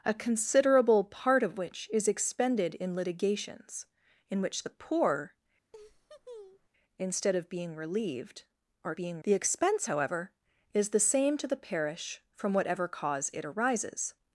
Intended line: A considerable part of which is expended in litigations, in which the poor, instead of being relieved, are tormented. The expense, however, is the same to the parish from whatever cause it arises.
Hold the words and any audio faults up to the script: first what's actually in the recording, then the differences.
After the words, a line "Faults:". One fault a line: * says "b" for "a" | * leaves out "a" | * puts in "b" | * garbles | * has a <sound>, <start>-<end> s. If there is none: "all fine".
A considerable part of which is expended in litigations, in which the poor, instead of being relieved, are being. The expense, however, is the same to the parish from whatever cause it arises.
Faults:
* has a laugh, 5.7-6.7 s
* says "being" for "tormented"